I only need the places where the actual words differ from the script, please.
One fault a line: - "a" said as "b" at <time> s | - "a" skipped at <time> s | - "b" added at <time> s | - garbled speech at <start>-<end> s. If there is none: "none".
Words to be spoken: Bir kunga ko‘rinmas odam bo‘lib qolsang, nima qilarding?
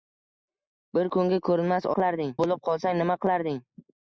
- "odam" said as "qilarding" at 2.0 s